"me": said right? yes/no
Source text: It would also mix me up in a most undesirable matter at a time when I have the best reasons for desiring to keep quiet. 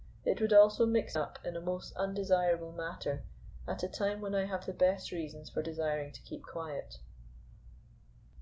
no